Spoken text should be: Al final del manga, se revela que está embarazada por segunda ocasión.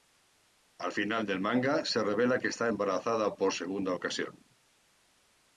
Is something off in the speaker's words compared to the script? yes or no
no